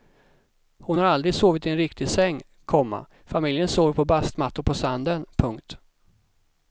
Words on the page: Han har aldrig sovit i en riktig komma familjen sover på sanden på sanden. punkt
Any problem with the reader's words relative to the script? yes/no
yes